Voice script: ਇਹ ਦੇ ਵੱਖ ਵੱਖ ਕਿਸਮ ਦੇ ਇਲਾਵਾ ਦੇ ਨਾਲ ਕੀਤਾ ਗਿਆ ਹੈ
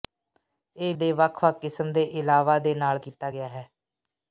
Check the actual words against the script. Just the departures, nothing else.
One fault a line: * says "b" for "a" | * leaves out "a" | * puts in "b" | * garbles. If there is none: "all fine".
all fine